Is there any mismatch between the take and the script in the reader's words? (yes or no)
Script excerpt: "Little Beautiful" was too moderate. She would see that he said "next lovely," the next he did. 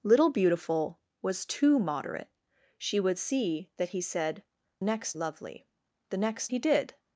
no